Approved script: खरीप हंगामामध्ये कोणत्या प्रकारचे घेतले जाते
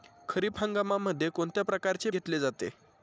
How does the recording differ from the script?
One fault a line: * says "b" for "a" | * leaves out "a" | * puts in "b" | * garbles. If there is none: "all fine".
all fine